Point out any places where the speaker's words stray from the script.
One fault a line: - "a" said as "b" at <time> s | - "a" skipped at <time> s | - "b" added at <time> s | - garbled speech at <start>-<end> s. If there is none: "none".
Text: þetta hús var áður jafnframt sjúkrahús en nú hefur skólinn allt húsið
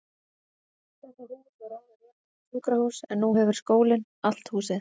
none